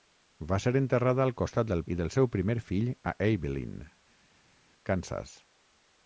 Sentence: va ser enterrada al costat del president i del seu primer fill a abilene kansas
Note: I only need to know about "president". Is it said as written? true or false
false